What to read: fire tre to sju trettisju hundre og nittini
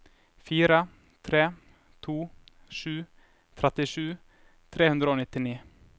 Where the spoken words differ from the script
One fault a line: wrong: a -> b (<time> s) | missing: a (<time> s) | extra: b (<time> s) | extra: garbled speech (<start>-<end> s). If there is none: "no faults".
extra: tre (4.7 s)